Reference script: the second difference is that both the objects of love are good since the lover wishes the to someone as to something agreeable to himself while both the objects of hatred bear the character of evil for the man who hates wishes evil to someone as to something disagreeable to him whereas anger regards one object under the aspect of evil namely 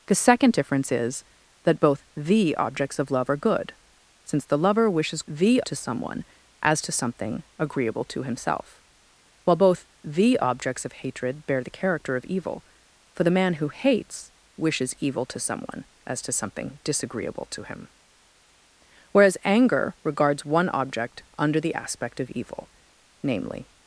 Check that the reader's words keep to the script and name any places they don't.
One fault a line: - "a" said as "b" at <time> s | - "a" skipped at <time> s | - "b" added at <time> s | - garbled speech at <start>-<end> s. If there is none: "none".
none